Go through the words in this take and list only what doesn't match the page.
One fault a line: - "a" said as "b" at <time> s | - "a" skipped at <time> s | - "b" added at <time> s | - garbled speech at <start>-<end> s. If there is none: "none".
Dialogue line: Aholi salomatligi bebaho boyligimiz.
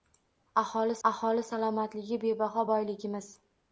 - "aholi" added at 1.1 s